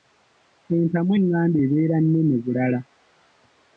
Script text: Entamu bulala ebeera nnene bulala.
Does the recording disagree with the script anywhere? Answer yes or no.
yes